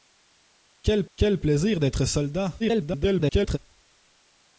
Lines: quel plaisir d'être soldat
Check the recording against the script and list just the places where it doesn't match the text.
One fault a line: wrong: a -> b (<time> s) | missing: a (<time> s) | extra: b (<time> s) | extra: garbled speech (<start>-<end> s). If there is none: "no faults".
extra: quel (1.1 s)
extra: garbled speech (2.6-3.6 s)